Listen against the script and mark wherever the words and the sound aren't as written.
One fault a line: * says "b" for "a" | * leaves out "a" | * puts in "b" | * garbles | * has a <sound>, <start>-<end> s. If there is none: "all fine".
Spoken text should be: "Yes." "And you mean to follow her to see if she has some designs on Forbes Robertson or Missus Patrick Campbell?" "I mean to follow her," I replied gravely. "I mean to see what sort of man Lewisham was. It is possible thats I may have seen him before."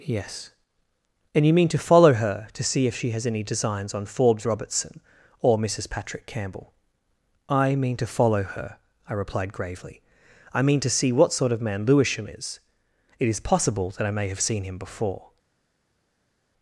* says "any" for "some"
* says "is" for "was"
* says "that" for "thats"